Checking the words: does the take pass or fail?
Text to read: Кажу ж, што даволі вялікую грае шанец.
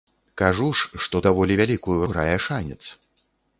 pass